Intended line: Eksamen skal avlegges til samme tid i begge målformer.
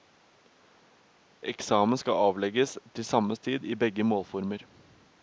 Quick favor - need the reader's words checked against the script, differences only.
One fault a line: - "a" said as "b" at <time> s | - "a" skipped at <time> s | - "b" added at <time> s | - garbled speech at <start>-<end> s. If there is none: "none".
none